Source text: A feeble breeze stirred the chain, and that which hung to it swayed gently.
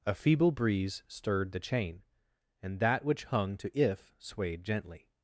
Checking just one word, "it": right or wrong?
wrong